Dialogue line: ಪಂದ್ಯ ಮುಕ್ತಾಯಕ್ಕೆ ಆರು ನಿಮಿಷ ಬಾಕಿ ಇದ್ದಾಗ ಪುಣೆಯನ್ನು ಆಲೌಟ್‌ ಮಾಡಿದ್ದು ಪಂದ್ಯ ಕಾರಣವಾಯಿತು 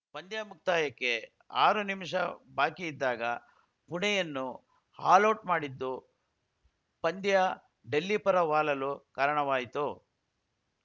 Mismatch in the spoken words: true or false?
true